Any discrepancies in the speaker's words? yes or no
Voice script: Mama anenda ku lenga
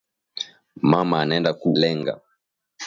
no